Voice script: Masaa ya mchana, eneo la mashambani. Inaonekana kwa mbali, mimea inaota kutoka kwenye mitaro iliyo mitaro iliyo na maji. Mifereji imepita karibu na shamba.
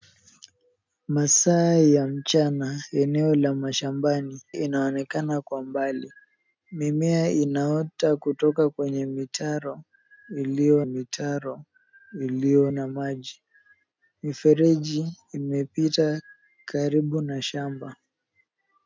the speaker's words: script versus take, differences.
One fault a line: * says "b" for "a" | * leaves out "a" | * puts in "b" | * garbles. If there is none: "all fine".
all fine